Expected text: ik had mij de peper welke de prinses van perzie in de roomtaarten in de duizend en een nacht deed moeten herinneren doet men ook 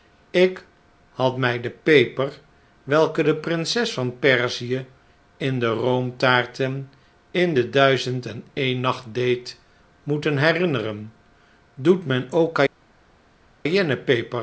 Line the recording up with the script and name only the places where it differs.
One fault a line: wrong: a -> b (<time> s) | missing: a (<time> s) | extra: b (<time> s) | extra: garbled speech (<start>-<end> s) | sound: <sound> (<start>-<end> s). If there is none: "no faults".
no faults